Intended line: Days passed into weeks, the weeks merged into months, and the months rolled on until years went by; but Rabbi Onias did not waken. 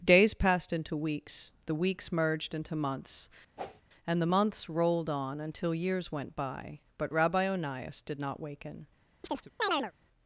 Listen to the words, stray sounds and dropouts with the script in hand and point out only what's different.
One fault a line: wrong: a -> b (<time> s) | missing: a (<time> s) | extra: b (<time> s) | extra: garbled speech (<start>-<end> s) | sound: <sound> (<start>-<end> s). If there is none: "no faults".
sound: whoosh (3.6-3.8 s)
sound: chirp (9.2-9.9 s)